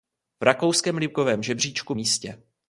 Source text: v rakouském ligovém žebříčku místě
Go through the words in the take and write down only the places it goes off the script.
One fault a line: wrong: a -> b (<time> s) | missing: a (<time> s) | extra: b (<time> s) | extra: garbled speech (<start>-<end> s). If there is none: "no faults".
no faults